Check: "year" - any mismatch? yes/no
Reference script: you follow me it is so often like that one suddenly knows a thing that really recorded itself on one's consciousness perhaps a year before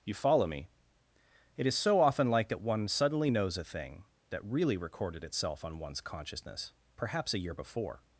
no